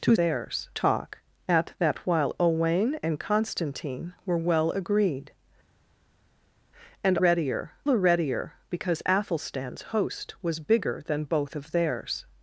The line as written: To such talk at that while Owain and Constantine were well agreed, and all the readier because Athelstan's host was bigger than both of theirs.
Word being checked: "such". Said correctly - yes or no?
no